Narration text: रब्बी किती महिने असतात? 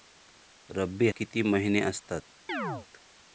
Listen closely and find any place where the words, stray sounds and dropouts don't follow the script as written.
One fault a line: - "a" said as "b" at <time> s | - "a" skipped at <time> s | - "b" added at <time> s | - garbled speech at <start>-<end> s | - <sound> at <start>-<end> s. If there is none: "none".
- chirp at 2.5-2.9 s